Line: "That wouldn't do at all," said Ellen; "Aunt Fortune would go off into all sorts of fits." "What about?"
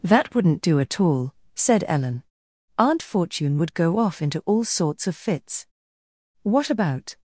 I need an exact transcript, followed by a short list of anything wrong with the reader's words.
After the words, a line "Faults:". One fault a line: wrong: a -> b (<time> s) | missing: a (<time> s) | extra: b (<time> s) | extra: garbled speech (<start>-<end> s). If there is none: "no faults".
"That wouldn't do at all," said Ellen; "Aunt Fortune would go off into all sorts of fits." "What about?"
Faults:
no faults